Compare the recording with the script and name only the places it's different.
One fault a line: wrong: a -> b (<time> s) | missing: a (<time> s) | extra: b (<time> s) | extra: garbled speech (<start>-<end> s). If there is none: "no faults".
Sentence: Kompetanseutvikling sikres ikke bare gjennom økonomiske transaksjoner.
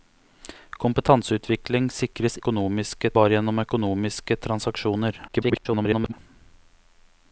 wrong: ikke -> økonomiske (2.4 s)
extra: garbled speech (5.3-6.1 s)